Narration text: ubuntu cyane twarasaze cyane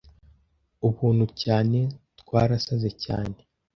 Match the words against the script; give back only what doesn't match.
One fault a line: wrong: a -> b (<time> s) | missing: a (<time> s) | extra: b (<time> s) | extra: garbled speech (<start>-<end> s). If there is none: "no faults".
no faults